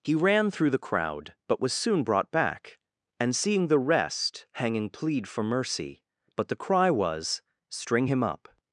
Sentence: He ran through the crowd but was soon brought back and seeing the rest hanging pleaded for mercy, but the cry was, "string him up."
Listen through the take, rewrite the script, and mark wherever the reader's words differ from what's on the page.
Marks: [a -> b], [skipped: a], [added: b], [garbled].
He ran through the crowd but was soon brought back and seeing the rest hanging [pleaded -> plead] for mercy, but the cry was, "string him up."